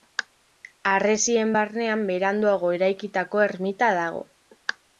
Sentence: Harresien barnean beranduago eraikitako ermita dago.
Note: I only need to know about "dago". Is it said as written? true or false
true